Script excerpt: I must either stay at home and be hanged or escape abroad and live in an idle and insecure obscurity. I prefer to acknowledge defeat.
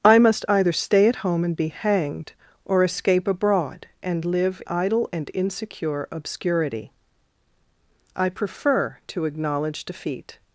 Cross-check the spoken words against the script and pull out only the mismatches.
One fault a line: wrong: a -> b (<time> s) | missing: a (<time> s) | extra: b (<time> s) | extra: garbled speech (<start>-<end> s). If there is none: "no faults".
missing: in an (4.6 s)